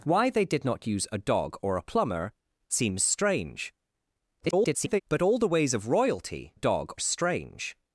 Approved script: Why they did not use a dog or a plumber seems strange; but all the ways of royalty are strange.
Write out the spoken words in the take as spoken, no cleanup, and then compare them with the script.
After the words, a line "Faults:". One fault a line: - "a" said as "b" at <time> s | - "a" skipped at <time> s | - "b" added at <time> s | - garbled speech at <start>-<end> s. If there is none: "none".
Why they did not use a dog or a plumber seems strange; [garbled] but all the ways of royalty dog strange.
Faults:
- garbled speech at 4.4-5.0 s
- "are" said as "dog" at 6.5 s